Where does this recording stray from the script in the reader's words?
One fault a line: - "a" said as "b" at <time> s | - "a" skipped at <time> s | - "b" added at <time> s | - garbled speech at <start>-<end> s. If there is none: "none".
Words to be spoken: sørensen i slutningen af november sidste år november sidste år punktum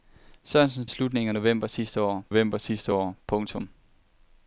none